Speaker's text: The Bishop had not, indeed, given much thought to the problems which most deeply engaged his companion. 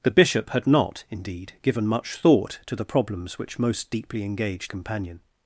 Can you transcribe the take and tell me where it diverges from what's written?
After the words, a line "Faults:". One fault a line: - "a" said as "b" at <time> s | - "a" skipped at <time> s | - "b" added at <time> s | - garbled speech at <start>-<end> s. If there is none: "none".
The Bishop had not, indeed, given much thought to the problems which most deeply engaged companion.
Faults:
- "his" skipped at 4.7 s